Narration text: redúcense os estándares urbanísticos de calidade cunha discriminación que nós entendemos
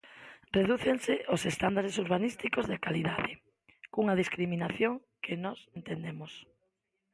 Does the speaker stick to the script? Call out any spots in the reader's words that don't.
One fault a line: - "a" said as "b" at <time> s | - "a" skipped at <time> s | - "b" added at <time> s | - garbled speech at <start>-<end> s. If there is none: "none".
none